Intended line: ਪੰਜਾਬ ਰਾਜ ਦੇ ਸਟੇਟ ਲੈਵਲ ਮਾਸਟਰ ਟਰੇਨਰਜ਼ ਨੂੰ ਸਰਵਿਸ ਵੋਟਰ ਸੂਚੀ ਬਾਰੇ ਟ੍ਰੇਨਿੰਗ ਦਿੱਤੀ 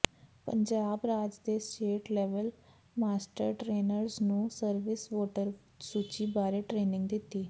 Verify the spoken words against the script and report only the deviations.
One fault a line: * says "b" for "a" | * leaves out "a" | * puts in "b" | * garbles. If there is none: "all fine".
all fine